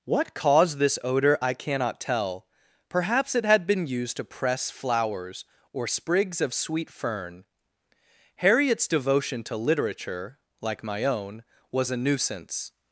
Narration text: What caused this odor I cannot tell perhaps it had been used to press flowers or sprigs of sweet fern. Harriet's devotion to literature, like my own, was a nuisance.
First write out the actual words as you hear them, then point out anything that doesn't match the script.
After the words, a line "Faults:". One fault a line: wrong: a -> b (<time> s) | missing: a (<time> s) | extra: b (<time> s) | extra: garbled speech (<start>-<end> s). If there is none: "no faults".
What caused this odor I cannot tell perhaps it had been used to press flowers or sprigs of sweet fern. Harriet's devotion to literature, like my own, was a nuisance.
Faults:
no faults